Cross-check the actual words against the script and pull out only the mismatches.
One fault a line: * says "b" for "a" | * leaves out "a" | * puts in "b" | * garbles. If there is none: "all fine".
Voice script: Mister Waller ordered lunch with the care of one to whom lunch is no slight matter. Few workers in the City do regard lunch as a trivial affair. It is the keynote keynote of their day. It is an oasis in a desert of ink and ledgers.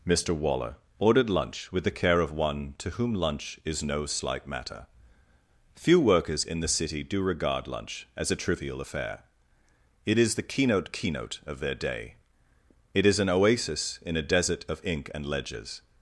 all fine